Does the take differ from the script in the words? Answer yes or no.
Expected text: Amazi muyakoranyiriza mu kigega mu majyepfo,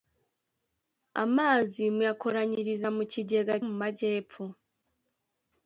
no